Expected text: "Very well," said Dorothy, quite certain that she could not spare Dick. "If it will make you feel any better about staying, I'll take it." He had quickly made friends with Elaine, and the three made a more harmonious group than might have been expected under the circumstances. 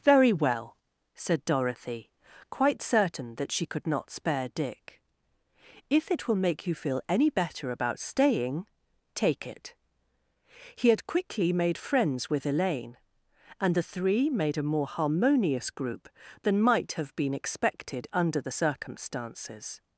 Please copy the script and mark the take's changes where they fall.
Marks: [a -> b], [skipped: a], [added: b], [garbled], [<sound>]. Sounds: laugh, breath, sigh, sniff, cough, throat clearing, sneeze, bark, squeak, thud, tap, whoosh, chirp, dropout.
"Very well," said Dorothy, quite certain that she could not spare Dick. "If it will make you feel any better about staying, [skipped: I'll] take it." He had quickly made friends with Elaine, and the three made a more harmonious group than might have been expected under the circumstances.